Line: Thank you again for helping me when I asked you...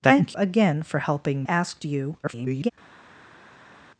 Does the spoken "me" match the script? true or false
false